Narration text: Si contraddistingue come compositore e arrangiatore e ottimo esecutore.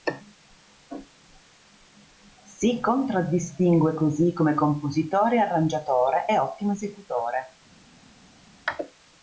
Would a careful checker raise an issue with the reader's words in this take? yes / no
yes